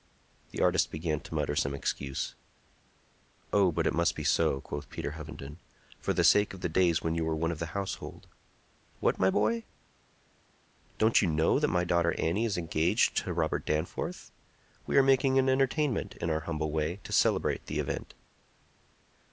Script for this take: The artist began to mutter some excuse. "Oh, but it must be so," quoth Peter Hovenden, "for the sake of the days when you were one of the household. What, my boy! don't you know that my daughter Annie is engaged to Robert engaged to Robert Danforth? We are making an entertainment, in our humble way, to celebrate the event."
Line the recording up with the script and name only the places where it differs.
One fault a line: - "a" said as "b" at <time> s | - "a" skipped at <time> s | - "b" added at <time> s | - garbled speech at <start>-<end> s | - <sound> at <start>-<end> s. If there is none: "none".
- "engaged to Robert" skipped at 13.6 s